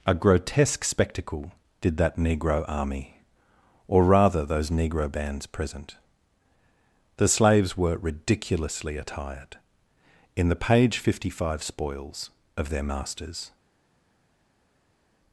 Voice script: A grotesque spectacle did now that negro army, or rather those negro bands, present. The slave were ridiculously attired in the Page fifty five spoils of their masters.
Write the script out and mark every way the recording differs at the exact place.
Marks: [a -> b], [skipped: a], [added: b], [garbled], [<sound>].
A grotesque spectacle did [skipped: now] that negro army, or rather those negro bands, present. The [slave -> slaves] were ridiculously attired in the Page fifty five spoils of their masters.